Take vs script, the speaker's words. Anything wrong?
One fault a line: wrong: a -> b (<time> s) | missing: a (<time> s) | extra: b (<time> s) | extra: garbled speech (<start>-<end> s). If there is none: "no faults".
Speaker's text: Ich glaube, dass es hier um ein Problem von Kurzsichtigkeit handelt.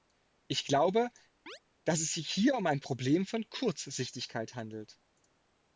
extra: sich (2.1 s)